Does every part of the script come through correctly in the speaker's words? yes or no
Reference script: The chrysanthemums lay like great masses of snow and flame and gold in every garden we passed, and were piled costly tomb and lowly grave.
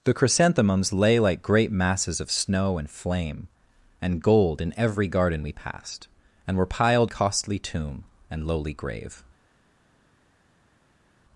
yes